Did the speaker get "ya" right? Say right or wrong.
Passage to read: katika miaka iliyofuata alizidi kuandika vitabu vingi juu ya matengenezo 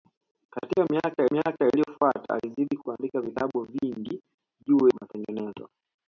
wrong